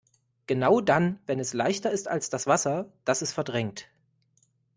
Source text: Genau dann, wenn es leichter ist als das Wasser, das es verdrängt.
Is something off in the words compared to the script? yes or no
no